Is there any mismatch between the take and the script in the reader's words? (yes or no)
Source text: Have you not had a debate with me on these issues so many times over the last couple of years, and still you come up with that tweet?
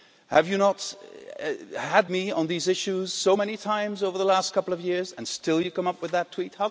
yes